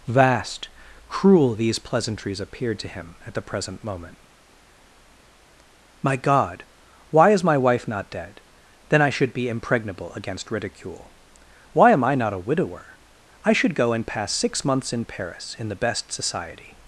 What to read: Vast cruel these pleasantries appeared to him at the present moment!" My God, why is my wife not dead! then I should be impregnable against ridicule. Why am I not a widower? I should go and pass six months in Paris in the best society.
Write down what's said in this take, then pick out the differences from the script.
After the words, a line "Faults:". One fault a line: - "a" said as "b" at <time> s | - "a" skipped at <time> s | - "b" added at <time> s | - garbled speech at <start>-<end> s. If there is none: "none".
Vast cruel these pleasantries appeared to him at the present moment!" My God, why is my wife not dead! then I should be impregnable against ridicule. Why am I not a widower? I should go and pass six months in Paris in the best society.
Faults:
none